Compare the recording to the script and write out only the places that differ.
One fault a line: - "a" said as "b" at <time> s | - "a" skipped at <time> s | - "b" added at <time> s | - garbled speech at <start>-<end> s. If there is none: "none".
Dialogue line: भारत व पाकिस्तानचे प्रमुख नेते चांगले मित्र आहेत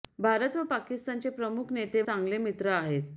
none